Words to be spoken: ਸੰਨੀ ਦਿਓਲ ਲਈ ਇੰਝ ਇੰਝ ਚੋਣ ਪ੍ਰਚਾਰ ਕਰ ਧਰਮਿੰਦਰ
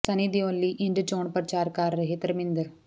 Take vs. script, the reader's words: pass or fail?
fail